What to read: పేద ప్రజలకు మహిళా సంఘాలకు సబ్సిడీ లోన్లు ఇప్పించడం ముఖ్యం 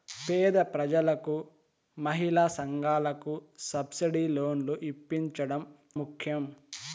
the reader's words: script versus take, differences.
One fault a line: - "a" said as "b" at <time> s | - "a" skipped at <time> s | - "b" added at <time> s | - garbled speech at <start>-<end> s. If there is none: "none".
none